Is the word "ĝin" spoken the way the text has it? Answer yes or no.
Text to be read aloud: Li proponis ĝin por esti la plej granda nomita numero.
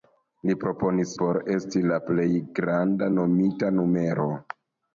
no